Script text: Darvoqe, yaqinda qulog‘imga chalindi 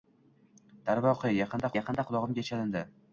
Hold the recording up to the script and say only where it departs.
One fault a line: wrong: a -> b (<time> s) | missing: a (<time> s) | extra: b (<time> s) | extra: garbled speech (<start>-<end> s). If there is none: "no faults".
extra: yaqinda (1.7 s)